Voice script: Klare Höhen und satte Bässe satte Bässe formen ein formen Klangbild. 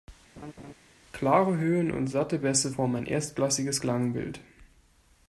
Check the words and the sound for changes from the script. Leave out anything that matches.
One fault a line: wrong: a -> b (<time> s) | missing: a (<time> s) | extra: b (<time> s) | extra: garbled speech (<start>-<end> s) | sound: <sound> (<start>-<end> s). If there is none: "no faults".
sound: laugh (0.4-0.7 s)
missing: satte Bässe (2.7 s)
wrong: formen -> erstklassiges (3.1 s)